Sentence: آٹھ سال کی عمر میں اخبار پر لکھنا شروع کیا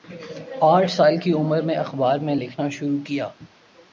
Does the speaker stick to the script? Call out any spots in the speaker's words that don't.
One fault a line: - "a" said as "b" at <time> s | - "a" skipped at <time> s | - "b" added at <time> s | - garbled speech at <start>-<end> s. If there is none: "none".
- "پر" said as "میں" at 2.2 s